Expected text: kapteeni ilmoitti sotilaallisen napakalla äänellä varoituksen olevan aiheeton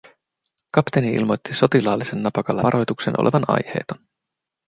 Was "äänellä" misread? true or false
true